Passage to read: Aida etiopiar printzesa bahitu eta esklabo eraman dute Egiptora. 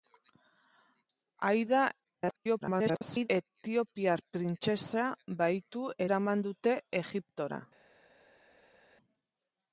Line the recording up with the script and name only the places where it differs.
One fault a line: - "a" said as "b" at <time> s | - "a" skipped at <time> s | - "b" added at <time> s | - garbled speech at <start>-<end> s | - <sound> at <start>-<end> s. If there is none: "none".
- garbled speech at 2.0-3.3 s
- "eta esklabo" skipped at 5.9 s